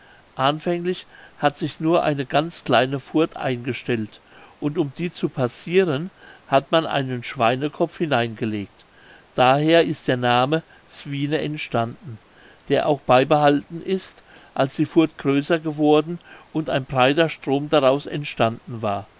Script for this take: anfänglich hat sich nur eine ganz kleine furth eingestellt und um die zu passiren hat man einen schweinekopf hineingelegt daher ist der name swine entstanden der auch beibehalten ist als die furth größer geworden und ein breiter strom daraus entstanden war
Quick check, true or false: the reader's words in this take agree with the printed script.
true